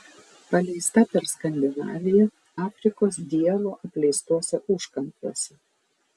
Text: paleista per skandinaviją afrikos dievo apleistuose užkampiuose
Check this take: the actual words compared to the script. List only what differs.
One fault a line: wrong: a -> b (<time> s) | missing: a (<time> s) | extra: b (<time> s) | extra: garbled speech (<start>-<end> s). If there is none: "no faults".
no faults